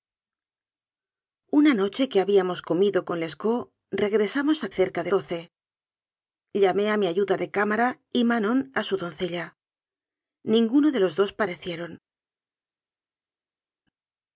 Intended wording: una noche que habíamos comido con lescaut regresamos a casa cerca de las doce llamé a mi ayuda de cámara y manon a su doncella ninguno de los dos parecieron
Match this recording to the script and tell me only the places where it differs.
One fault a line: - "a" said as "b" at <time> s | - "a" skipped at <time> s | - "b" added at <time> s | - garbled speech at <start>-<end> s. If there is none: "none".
- "casa" skipped at 4.7 s
- "las" skipped at 5.1 s